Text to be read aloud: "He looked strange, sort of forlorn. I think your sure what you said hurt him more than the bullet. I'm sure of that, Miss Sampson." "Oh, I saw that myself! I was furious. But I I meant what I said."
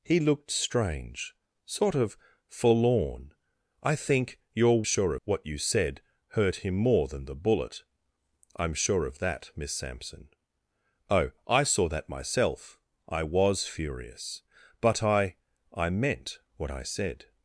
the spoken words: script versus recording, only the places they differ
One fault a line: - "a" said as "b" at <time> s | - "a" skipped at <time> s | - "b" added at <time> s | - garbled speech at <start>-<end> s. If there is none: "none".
none